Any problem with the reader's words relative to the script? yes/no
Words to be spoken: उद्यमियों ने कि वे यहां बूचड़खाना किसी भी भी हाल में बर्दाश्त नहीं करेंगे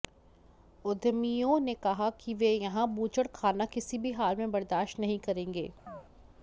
yes